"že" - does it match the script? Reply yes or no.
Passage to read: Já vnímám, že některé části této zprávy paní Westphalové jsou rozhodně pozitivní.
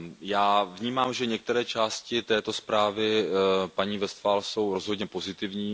yes